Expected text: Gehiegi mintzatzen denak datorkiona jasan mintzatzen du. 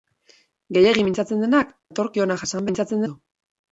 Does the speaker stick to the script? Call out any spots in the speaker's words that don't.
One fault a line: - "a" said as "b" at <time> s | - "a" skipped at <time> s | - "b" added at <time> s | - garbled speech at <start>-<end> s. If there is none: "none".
none